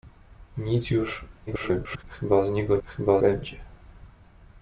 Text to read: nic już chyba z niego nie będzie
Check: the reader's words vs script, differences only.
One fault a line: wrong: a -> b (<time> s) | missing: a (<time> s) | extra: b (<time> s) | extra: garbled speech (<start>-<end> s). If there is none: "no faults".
extra: garbled speech (1.5-2.0 s)
wrong: nie -> chyba (2.9 s)